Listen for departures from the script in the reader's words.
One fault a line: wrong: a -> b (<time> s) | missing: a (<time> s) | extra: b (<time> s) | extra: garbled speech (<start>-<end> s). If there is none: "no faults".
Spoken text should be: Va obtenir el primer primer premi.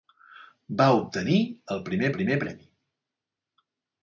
no faults